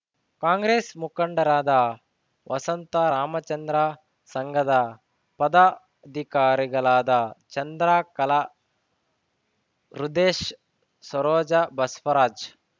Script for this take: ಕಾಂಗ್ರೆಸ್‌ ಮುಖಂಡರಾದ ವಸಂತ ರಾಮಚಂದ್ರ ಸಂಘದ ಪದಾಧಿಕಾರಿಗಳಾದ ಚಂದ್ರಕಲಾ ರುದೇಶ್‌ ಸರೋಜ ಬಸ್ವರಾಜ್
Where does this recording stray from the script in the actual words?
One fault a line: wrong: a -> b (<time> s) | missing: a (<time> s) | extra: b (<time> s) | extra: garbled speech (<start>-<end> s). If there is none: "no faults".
no faults